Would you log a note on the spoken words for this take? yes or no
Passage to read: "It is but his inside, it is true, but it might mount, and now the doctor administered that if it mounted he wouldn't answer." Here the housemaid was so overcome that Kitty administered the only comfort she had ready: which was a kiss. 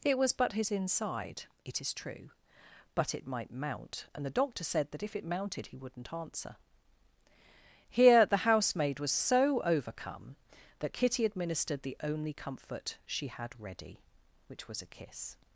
yes